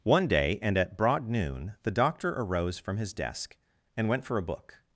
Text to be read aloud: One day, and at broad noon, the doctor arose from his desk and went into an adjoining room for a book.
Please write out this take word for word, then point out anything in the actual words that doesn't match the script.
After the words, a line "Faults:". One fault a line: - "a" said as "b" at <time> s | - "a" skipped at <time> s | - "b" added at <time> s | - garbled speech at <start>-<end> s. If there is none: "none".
One day, and at broad noon, the doctor arose from his desk and went for a book.
Faults:
- "into an adjoining room" skipped at 4.2 s